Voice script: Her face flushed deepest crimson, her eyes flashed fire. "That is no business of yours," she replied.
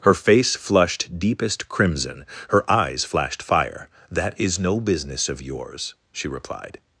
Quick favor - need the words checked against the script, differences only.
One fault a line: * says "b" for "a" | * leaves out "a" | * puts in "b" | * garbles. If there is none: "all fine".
all fine